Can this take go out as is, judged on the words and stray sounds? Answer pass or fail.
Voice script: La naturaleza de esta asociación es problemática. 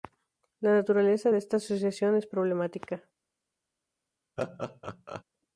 fail